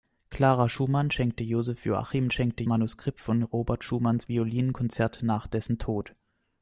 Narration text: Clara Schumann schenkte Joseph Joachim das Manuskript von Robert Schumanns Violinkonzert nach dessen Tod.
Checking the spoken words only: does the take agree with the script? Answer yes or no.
no